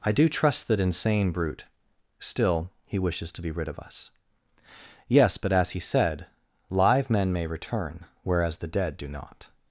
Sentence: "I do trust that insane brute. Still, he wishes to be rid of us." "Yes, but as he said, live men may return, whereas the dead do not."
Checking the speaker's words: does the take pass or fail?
pass